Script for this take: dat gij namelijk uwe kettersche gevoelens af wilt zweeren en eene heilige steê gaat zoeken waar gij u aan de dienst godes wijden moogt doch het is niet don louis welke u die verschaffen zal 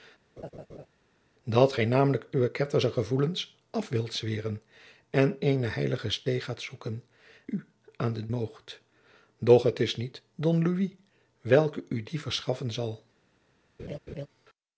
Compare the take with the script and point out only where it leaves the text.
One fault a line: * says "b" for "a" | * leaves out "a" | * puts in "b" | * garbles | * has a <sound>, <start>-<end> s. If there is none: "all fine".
* has a laugh, 0.4-0.9 s
* leaves out "waar gij"
* leaves out "dienst godes wijden"
* has a laugh, 13.8-14.3 s